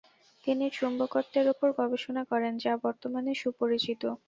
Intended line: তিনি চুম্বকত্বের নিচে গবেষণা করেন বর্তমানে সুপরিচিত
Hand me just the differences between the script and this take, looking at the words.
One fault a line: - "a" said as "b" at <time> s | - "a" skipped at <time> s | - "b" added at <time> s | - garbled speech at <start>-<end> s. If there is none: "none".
- "নিচে" said as "উপর" at 1.5 s
- "যা" added at 2.6 s